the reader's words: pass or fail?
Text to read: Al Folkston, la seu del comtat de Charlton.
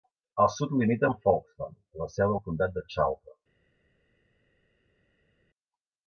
fail